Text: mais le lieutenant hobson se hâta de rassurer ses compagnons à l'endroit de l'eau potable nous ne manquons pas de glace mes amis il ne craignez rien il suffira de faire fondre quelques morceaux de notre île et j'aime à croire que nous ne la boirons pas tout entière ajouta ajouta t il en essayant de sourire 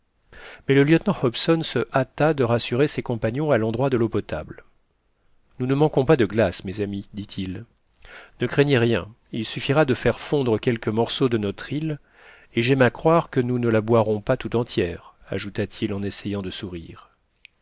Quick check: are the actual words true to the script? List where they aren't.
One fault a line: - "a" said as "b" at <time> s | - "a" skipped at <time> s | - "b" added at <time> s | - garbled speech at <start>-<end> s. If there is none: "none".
- "dit" added at 7.1 s
- "ajouta" skipped at 15.7 s